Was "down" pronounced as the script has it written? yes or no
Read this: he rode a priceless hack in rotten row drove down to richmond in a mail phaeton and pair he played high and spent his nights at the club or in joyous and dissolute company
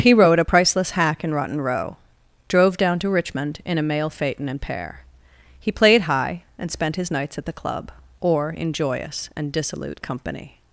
yes